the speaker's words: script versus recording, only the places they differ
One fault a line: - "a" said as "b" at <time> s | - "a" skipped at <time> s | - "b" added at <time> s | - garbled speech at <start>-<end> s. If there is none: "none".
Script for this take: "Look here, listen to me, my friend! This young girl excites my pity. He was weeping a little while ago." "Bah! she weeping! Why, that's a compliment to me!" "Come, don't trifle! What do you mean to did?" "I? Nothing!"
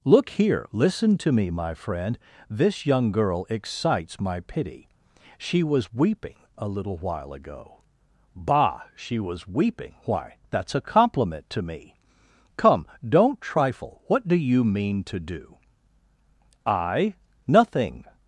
- "He" said as "She" at 5.4 s
- "was" added at 9.2 s
- "did" said as "do" at 15.2 s